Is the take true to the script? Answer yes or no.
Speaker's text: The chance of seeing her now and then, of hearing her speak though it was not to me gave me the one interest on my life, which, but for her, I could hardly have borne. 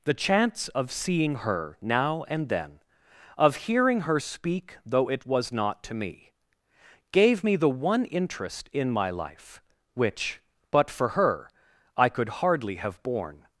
no